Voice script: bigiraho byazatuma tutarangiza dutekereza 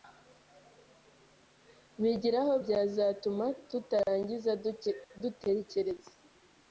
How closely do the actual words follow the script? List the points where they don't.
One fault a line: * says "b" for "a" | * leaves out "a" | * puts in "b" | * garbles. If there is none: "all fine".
all fine